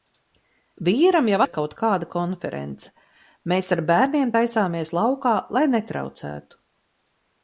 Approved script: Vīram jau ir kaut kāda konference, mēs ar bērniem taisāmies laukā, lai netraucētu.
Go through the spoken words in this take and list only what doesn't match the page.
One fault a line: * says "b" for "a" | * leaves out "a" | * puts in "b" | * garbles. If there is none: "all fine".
all fine